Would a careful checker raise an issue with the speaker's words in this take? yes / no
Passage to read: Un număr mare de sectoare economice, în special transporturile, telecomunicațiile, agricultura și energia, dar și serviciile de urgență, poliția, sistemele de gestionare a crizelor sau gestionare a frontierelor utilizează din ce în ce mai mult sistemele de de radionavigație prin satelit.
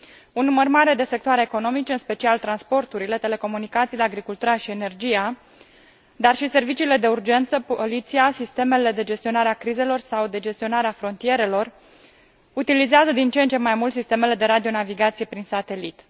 yes